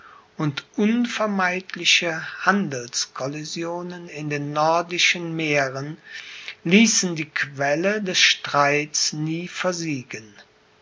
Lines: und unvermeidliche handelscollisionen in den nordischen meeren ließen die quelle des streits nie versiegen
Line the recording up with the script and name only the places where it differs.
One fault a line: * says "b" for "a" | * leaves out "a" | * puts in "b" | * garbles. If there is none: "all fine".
all fine